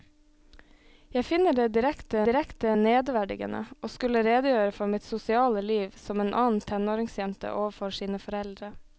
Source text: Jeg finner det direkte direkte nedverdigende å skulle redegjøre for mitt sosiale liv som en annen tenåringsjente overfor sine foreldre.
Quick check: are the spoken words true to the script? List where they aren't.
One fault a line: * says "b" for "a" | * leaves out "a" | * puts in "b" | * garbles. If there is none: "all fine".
all fine